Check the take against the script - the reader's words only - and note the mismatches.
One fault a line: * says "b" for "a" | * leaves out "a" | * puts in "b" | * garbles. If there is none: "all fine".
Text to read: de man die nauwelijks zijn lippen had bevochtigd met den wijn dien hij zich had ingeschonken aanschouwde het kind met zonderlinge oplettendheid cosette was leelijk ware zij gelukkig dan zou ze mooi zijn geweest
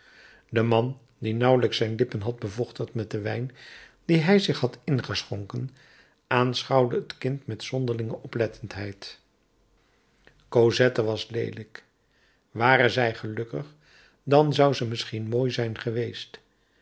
* puts in "misschien"